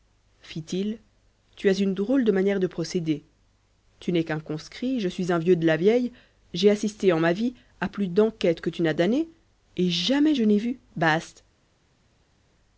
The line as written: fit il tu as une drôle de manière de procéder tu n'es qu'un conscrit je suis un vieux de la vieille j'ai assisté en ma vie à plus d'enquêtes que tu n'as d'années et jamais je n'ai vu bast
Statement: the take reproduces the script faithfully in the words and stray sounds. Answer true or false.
true